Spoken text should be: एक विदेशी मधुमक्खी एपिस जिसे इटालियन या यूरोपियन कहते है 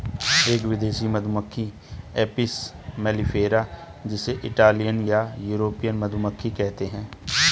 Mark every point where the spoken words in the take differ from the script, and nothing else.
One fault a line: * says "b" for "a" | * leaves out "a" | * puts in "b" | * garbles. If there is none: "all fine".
* puts in "मेलिफेरा"
* puts in "मधुमक्खी"